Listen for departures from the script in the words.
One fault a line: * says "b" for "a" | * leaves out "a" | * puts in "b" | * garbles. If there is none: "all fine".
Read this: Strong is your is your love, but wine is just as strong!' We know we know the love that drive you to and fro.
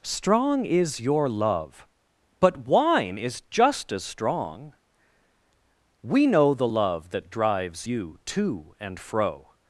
* leaves out "is your"
* leaves out "we know"
* says "drives" for "drive"